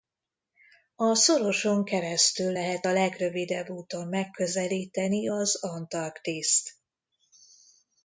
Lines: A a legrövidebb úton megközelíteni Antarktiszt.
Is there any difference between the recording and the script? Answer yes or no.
yes